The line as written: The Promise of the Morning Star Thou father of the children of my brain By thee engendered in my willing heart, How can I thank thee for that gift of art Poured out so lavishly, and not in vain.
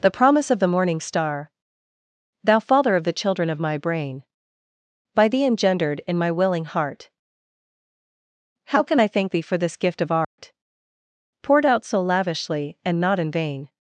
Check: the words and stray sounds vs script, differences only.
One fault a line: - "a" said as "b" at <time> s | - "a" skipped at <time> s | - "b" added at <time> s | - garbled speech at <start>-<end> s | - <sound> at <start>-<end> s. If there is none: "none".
- "that" said as "this" at 9.6 s
- dropout at 10.2-10.4 s